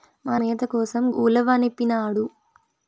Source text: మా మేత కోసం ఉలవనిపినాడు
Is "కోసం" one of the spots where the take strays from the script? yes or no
no